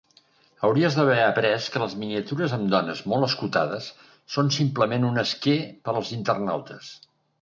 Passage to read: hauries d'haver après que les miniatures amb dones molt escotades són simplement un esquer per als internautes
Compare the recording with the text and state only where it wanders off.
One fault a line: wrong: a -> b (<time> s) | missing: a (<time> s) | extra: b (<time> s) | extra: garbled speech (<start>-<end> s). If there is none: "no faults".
no faults